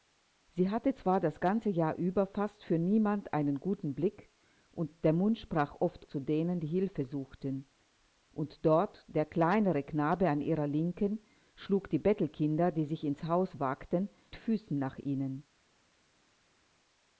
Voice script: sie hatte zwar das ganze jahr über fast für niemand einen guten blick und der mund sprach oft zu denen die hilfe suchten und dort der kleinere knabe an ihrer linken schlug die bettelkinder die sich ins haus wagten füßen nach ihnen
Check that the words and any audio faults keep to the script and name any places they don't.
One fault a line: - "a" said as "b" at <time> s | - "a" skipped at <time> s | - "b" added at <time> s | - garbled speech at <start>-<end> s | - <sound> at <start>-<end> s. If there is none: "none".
none